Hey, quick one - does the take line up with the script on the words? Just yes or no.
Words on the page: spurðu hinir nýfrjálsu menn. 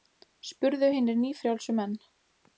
yes